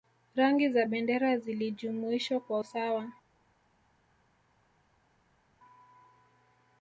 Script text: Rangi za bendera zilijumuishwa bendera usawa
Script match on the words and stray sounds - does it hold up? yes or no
no